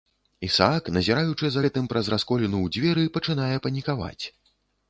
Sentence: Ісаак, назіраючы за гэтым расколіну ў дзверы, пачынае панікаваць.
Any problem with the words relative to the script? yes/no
yes